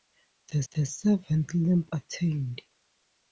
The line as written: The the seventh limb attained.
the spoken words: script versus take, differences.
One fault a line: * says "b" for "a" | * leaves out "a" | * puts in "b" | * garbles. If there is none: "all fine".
all fine